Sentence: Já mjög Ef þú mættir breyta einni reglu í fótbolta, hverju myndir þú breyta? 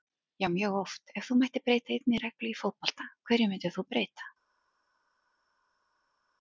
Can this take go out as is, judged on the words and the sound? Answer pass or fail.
fail